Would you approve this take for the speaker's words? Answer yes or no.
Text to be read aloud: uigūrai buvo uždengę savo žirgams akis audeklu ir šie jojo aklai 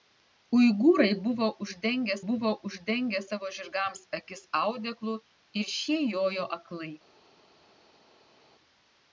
no